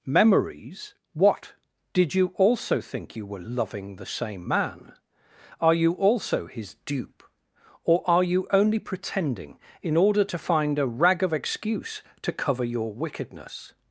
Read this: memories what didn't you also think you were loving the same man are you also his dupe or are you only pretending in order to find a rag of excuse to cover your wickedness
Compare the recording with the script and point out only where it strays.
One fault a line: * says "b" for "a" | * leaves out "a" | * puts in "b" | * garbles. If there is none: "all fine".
* says "did" for "didn't"